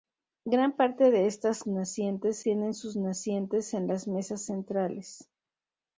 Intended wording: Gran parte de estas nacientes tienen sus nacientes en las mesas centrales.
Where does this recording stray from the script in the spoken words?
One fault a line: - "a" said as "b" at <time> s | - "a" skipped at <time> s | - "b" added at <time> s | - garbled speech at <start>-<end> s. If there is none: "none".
none